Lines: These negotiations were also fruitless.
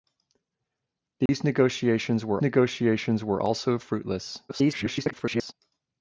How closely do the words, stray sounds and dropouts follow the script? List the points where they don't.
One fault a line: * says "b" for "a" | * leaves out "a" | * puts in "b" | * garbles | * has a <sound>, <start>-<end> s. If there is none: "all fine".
* has a dropout, 1.3-1.3 s
* puts in "negotiations were"
* garbles